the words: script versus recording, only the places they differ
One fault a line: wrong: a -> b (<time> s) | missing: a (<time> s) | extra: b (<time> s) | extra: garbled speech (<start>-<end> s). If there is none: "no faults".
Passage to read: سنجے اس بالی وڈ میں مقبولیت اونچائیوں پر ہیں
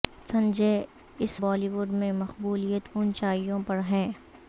no faults